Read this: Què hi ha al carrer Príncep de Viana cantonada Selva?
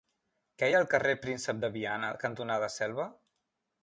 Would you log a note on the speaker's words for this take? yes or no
no